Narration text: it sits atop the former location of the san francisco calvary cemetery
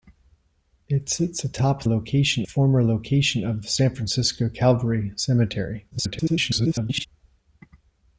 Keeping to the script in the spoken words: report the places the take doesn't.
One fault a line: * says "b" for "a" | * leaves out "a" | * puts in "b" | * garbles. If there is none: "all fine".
* says "location" for "the"
* garbles